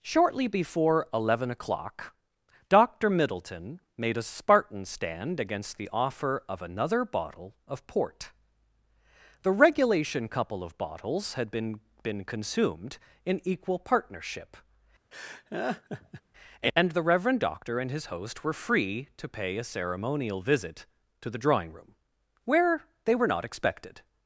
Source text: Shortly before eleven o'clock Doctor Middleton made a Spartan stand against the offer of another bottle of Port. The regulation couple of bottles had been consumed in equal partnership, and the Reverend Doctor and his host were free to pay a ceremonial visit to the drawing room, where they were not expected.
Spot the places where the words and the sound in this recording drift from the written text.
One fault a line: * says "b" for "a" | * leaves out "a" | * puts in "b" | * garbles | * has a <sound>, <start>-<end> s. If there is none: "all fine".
* puts in "been"
* has a laugh, 15.1-16.2 s